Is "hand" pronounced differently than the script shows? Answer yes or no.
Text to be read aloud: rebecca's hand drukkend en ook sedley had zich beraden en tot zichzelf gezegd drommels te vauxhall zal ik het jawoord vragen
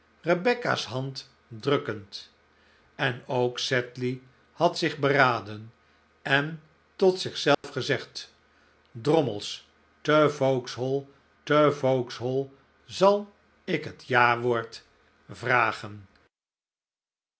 no